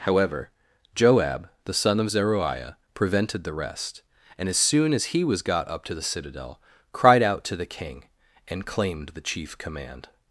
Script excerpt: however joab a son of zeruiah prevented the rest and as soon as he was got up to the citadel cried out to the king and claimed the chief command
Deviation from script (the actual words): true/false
true